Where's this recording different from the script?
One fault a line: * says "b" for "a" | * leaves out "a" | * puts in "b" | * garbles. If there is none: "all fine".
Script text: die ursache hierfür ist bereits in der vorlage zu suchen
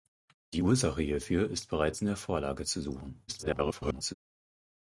* garbles